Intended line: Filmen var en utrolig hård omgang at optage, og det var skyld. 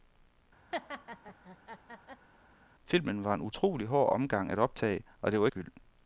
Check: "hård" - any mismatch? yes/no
no